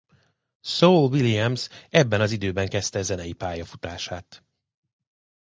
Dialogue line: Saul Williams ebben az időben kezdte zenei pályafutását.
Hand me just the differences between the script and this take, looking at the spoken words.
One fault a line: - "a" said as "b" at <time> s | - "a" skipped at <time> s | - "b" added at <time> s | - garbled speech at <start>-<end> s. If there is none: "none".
none